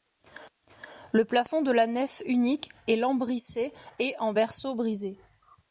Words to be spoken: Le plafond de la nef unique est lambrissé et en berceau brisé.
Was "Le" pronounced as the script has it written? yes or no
yes